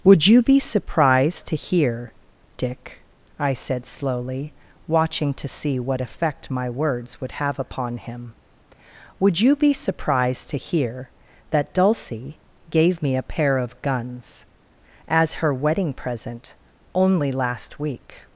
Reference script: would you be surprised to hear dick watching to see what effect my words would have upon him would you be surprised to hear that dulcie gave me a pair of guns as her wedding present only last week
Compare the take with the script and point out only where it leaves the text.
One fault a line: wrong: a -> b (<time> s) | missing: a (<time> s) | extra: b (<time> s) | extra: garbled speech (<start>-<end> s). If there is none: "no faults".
extra: i said slowly (3.4 s)